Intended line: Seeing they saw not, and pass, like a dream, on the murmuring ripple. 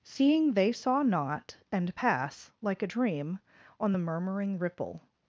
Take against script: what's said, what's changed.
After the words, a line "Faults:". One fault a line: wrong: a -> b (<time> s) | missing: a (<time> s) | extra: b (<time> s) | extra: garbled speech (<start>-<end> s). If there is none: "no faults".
Seeing they saw not, and pass, like a dream, on the murmuring ripple.
Faults:
no faults